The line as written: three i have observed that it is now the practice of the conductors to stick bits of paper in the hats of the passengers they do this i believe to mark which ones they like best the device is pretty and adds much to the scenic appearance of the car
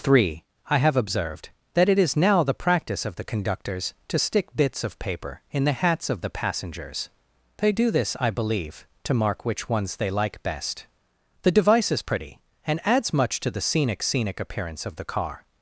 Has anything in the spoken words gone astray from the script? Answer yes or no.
yes